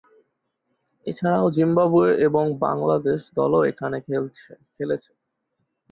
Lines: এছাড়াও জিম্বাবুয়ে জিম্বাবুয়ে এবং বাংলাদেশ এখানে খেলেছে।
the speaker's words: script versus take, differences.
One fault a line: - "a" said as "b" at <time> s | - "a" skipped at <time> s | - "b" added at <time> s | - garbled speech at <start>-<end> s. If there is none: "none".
- "জিম্বাবুয়ে" skipped at 2.1 s
- "দলও" added at 3.4 s